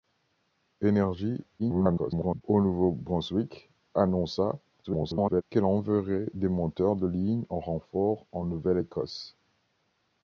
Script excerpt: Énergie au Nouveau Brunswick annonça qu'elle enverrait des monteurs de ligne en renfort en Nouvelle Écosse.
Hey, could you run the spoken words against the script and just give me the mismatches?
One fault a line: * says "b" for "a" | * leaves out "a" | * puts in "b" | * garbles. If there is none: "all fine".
* garbles
* garbles